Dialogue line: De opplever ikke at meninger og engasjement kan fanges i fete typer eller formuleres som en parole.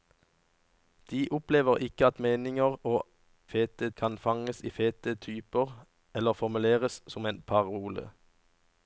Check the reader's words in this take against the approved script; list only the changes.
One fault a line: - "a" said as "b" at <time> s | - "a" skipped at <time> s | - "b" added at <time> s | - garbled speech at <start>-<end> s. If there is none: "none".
- "engasjement" said as "fete" at 3.5 s